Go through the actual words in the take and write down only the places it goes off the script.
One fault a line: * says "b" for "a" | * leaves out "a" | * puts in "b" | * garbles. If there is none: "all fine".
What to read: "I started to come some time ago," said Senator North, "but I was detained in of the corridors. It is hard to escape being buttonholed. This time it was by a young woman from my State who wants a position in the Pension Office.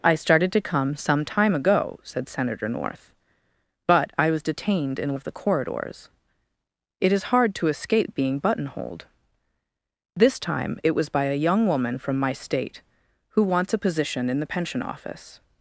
all fine